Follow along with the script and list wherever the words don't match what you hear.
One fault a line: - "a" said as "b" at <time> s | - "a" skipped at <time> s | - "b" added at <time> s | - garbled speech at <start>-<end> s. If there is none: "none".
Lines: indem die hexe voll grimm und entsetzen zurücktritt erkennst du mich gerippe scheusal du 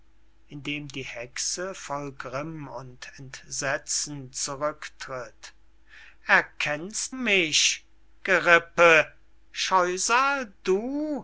- "du" skipped at 7.2 s